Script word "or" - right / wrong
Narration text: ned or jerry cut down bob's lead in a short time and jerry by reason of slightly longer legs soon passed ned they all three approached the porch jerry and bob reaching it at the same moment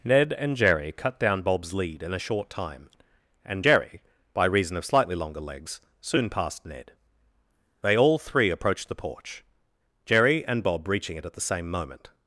wrong